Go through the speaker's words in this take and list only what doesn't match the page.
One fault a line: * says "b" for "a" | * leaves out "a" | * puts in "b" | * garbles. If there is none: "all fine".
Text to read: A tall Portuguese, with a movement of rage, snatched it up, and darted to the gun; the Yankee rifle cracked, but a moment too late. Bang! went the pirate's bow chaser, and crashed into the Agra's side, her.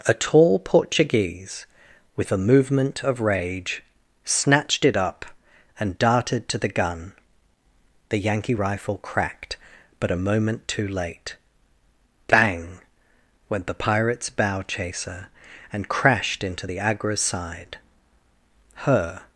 all fine